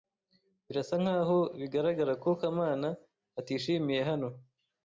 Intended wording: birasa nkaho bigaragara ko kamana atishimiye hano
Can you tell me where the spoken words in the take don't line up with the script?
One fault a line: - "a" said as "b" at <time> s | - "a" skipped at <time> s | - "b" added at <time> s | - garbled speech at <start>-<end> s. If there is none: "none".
none